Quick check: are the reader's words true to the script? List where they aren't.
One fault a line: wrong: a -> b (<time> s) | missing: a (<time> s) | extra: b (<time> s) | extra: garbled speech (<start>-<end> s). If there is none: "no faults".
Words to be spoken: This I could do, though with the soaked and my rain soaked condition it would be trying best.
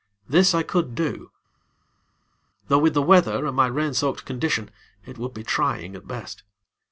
wrong: soaked -> weather (3.0 s)
extra: at (5.9 s)